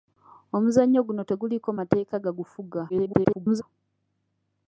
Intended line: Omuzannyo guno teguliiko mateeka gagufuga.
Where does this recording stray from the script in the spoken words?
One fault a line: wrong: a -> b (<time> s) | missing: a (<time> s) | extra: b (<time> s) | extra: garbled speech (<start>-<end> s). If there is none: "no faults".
extra: garbled speech (2.9-3.6 s)